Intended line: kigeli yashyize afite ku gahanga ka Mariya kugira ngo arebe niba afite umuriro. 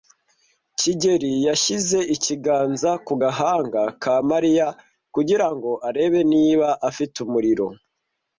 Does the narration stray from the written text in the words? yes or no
yes